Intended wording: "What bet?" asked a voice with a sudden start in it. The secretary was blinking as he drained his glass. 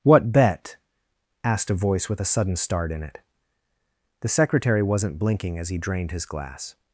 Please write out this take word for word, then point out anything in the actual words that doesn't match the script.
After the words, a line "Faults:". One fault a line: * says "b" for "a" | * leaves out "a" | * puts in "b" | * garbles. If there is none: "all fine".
"What bet?" asked a voice with a sudden start in it. The secretary wasn't blinking as he drained his glass.
Faults:
* says "wasn't" for "was"